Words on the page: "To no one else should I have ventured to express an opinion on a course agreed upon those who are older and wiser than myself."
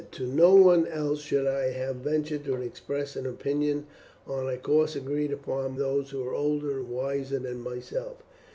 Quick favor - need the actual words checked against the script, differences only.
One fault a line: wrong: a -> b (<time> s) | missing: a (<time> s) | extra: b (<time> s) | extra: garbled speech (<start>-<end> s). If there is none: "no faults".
no faults